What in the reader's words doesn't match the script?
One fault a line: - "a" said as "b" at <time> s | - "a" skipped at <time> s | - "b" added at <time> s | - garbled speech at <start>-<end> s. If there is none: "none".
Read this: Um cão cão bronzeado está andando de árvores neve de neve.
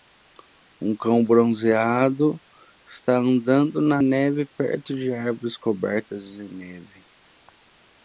- "cão" skipped at 1.2 s
- "na neve perto" added at 3.8 s
- "neve" said as "cobertas" at 5.6 s